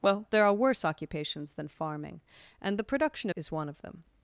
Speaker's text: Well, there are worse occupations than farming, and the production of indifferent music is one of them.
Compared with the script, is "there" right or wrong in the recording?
right